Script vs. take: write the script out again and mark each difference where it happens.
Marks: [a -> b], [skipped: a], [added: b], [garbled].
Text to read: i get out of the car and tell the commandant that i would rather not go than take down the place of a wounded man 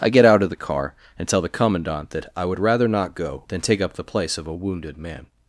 i get out of the car and tell the commandant that i would rather not go than take [down -> up] the place of a wounded man